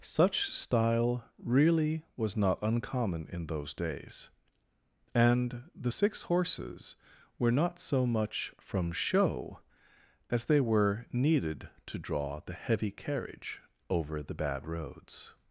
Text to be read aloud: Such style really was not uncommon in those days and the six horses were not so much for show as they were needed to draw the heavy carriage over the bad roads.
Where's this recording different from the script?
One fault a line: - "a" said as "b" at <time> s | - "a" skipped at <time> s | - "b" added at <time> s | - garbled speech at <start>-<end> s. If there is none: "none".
- "for" said as "from" at 8.6 s